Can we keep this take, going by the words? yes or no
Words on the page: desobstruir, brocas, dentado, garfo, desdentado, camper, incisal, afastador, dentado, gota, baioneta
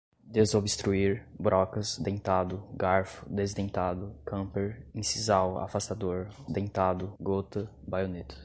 yes